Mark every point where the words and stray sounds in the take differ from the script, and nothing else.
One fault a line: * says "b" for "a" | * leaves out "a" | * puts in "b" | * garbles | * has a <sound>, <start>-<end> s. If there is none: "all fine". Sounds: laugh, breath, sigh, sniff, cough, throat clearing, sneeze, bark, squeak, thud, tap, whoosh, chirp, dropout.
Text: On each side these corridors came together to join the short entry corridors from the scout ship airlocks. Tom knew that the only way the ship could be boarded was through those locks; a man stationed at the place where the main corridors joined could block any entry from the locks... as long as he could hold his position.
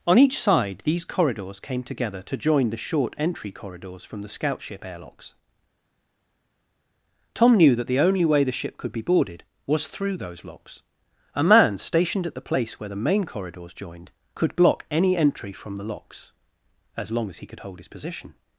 all fine